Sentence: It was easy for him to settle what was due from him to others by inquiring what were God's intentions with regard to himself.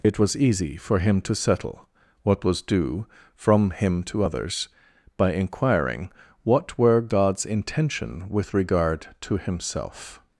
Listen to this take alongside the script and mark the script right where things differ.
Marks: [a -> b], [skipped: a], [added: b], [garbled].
It was easy for him to settle what was due from him to others by inquiring what were God's [intentions -> intention] with regard to himself.